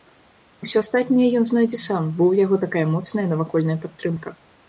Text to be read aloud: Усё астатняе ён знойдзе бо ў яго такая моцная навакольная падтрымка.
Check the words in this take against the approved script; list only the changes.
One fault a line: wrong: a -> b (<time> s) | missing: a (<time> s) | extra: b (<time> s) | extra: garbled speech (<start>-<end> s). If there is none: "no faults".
extra: сам (1.9 s)